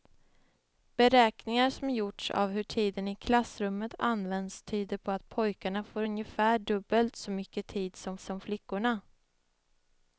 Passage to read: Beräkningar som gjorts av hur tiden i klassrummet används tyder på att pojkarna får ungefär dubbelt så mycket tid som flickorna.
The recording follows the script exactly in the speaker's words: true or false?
false